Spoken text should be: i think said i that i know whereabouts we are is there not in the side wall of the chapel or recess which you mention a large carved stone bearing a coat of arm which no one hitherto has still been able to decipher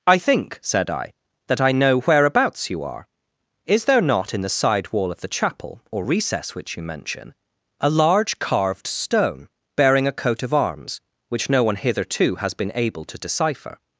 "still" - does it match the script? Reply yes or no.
no